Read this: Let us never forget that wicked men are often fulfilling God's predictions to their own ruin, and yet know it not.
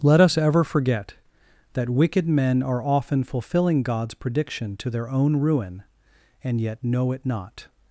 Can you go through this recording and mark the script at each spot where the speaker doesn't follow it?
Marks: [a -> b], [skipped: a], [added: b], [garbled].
Let us [never -> ever] forget that wicked men are often fulfilling God's [predictions -> prediction] to their own ruin, and yet know it not.